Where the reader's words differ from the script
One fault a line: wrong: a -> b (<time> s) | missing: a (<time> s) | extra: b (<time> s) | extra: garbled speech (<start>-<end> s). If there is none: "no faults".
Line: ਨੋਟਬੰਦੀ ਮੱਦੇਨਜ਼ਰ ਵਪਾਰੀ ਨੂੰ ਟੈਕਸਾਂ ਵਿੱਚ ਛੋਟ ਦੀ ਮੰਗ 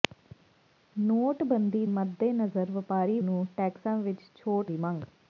no faults